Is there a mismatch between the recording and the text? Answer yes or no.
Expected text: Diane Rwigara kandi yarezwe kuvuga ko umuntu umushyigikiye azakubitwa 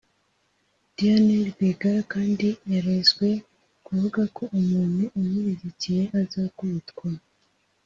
no